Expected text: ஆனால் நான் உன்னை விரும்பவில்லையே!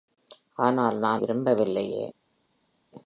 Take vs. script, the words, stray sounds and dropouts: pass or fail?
fail